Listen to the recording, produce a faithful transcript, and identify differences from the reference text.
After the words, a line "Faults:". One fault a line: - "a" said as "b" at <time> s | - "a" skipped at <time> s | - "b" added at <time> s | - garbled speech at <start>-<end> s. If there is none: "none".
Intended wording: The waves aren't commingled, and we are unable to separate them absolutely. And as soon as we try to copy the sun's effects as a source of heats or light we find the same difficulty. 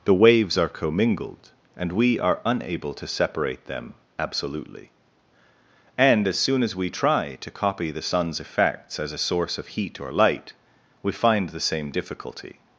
The waves are commingled, and we are unable to separate them absolutely. And as soon as we try to copy the sun's effects as a source of heat or light we find the same difficulty.
Faults:
- "aren't" said as "are" at 0.6 s
- "heats" said as "heat" at 9.7 s